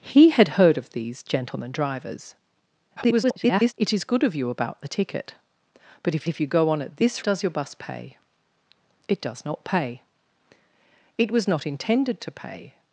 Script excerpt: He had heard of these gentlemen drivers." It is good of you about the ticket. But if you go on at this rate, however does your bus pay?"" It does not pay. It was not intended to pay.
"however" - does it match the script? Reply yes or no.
no